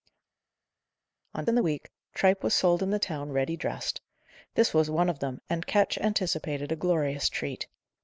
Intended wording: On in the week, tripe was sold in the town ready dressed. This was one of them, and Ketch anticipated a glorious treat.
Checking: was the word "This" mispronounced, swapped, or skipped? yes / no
no